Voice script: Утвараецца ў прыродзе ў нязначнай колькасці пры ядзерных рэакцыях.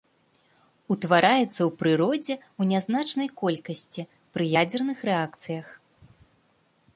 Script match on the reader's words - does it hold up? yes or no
yes